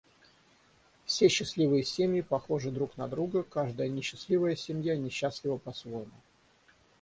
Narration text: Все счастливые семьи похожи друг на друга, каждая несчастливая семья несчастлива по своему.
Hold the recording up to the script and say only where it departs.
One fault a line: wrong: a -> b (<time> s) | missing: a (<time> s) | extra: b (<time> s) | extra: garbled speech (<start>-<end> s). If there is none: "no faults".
no faults